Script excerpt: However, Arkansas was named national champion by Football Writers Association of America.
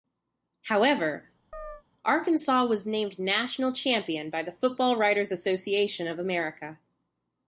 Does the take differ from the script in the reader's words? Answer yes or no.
yes